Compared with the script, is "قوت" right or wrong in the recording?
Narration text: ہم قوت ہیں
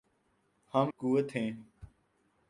right